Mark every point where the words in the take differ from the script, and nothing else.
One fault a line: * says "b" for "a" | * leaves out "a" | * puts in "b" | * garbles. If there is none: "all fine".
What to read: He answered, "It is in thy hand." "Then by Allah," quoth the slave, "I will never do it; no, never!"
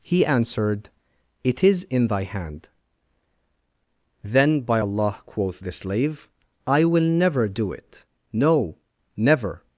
all fine